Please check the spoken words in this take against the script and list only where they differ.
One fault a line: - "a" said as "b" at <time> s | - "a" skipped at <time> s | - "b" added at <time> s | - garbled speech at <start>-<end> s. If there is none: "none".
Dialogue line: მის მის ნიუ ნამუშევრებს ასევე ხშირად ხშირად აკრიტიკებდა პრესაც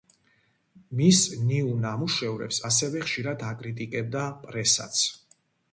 - "მის" skipped at 1.2 s
- "ხშირად" skipped at 3.4 s